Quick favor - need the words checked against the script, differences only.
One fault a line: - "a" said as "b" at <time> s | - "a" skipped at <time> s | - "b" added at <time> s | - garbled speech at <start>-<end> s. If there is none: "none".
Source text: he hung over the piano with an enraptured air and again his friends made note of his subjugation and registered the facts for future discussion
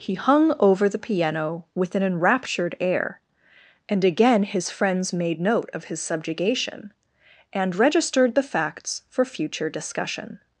none